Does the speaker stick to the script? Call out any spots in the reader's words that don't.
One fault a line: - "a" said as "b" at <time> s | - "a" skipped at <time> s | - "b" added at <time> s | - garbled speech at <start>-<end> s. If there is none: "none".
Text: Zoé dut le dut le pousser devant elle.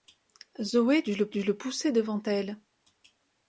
none